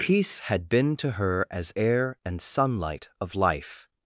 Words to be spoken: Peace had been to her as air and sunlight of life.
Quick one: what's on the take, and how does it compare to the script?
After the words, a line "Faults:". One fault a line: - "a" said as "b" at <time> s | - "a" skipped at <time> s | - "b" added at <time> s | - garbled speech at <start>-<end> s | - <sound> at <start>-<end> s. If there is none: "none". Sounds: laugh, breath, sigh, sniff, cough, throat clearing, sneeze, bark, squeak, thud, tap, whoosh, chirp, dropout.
Peace had been to her as air and sunlight of life.
Faults:
none